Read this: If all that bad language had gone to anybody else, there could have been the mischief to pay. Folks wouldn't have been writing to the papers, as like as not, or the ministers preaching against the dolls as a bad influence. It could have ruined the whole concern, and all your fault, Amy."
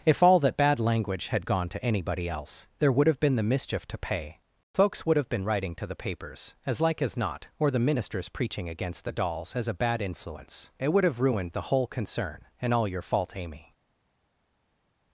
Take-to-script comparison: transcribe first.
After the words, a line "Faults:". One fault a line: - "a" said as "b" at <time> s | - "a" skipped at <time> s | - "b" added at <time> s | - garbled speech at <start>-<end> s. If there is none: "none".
If all that bad language had gone to anybody else, there would have been the mischief to pay. Folks would have been writing to the papers, as like as not, or the ministers preaching against the dolls as a bad influence. It would have ruined the whole concern, and all your fault, Amy."
Faults:
- "could" said as "would" at 2.9 s
- "wouldn't" said as "would" at 5.0 s
- "could" said as "would" at 10.9 s